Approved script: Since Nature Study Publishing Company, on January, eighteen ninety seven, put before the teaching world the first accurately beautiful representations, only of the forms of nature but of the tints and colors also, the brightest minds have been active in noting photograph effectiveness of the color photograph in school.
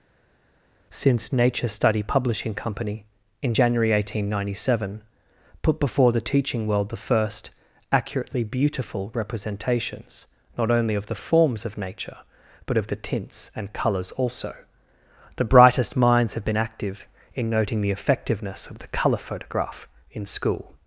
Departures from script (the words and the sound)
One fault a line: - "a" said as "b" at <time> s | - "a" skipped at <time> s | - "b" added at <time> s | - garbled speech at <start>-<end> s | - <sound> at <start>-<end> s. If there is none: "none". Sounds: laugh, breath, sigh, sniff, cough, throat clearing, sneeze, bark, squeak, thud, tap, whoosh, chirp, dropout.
- "on" said as "in" at 3.4 s
- "not" added at 10.6 s
- "photograph" said as "the" at 17.8 s